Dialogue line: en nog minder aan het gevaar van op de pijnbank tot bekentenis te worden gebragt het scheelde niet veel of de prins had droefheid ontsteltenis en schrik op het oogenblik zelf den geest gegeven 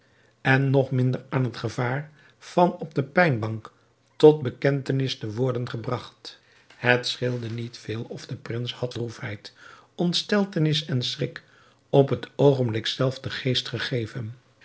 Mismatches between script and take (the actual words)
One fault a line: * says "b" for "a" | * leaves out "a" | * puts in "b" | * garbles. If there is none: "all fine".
all fine